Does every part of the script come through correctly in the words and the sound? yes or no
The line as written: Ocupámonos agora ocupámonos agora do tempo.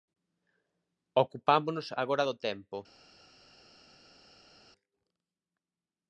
no